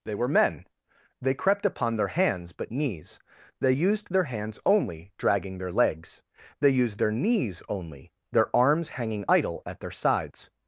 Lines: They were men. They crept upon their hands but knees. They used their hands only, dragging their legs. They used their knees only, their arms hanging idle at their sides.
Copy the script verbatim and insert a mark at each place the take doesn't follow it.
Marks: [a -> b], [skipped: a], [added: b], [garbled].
They were men. They crept upon their hands but knees. They used their hands only, dragging their legs. They used their knees only, their arms hanging idle at their sides.